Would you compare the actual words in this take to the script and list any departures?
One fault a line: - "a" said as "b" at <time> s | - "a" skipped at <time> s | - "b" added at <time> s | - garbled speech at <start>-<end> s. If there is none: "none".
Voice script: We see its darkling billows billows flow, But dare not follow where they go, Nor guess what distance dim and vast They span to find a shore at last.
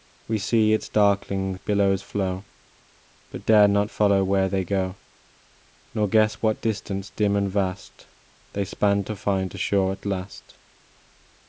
- "billows" skipped at 2.0 s